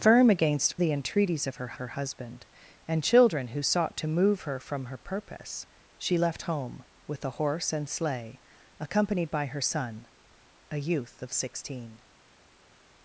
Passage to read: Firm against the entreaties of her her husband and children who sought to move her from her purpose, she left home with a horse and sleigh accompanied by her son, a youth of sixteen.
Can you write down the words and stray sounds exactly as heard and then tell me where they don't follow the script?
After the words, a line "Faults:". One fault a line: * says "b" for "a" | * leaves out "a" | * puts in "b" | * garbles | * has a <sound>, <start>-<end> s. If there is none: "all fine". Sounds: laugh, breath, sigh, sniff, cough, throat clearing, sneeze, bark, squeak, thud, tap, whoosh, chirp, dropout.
Firm against the entreaties of her her husband and children who sought to move her from her purpose, she left home with a horse and sleigh accompanied by her son, a youth of sixteen.
Faults:
all fine